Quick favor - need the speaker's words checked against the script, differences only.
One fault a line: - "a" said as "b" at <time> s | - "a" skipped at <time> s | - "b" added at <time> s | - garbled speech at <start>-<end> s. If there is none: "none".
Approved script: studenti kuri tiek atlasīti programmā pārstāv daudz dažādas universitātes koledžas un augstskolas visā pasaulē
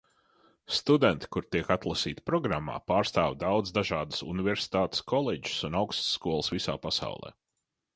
none